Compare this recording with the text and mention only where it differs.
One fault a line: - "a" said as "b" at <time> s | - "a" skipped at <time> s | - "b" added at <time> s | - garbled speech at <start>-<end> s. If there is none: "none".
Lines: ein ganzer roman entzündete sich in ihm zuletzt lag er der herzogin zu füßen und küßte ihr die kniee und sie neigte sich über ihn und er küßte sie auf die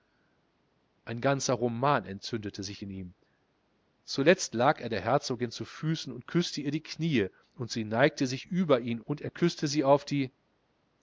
none